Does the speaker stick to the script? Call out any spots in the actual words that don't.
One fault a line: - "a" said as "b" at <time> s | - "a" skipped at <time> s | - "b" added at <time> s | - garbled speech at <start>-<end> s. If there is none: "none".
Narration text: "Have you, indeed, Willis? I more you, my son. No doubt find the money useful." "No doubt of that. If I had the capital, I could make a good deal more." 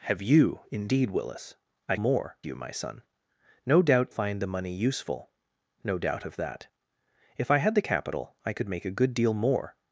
none